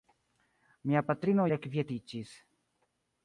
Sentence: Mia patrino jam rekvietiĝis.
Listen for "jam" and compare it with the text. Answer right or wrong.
wrong